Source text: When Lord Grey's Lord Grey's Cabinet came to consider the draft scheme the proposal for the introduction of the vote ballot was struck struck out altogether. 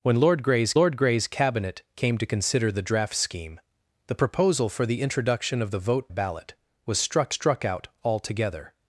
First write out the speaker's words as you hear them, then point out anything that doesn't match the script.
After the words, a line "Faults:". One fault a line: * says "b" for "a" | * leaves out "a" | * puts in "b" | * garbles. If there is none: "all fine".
When Lord Grey's Lord Grey's Cabinet came to consider the draft scheme the proposal for the introduction of the vote ballot was struck struck out altogether.
Faults:
all fine